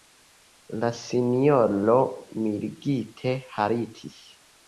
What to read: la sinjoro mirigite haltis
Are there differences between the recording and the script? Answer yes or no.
no